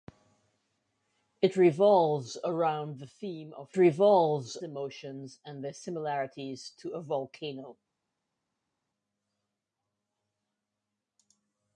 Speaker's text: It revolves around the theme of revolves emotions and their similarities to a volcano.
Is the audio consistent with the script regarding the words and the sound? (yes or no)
yes